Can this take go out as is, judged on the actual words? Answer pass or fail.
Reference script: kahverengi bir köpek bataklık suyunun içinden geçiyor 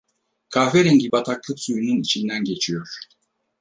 fail